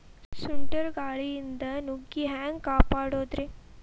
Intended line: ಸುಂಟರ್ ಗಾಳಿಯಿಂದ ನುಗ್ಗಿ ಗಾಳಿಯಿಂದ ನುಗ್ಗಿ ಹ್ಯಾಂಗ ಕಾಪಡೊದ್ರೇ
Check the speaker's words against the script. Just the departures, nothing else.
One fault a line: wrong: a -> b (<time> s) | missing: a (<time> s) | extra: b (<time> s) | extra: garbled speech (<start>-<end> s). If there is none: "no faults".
missing: ಗಾಳಿಯಿಂದ ನುಗ್ಗಿ (2.3 s)